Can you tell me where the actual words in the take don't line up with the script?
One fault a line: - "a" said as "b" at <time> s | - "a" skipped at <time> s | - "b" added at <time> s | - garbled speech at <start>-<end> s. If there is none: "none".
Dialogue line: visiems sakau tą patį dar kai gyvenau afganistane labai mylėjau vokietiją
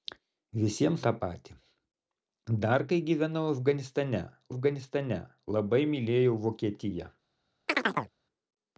- "sakau" skipped at 1.0 s
- "afganistane" added at 4.5 s